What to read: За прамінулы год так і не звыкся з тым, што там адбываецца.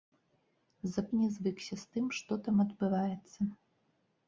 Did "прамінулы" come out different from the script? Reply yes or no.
yes